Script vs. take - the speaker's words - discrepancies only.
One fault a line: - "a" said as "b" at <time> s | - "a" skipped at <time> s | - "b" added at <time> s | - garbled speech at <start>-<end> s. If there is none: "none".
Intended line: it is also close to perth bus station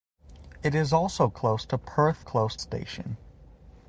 - "bus" said as "close" at 2.2 s